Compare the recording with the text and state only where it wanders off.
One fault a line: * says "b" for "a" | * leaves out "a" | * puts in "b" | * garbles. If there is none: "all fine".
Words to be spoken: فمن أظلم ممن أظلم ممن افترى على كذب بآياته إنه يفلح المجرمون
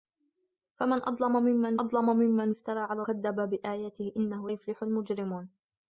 all fine